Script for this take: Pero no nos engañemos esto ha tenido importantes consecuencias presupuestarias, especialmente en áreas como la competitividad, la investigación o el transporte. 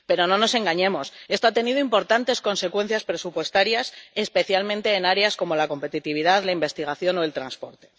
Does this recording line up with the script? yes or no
yes